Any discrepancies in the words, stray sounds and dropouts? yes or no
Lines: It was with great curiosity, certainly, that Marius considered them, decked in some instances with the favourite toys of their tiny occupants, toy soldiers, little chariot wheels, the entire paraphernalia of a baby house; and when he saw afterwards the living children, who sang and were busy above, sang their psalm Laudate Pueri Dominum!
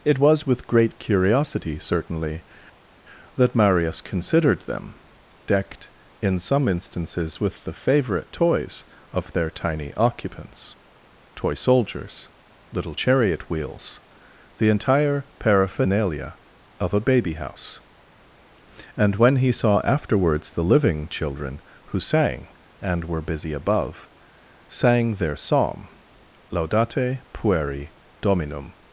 no